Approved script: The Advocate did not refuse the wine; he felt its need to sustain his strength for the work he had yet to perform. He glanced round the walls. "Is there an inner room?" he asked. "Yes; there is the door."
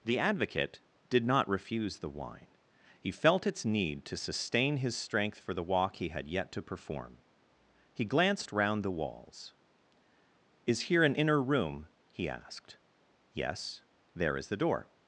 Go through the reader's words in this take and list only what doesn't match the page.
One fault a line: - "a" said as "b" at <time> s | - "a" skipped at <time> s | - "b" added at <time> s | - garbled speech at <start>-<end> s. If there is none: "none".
- "work" said as "walk" at 5.6 s
- "there" said as "here" at 10.8 s